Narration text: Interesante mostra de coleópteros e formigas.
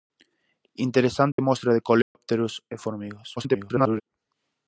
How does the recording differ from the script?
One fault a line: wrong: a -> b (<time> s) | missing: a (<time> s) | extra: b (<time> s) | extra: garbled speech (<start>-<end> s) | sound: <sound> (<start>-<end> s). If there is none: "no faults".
sound: dropout (1.3-1.4 s)
sound: dropout (2.0-2.2 s)
extra: garbled speech (3.4-4.0 s)